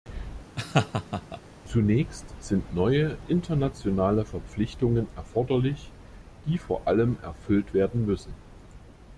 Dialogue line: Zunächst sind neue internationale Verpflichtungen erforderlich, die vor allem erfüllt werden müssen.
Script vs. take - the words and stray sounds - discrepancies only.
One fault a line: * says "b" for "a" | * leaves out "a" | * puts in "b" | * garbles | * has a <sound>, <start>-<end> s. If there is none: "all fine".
* has a laugh, 0.6-1.4 s